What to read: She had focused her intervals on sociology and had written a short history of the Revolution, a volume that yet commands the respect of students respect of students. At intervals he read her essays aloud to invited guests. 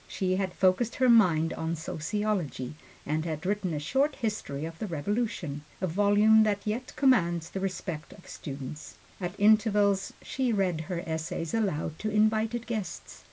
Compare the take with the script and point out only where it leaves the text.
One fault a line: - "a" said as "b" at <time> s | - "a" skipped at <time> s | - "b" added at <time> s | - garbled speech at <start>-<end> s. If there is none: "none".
- "intervals" said as "mind" at 1.1 s
- "respect of students" skipped at 9.0 s
- "he" said as "she" at 10.2 s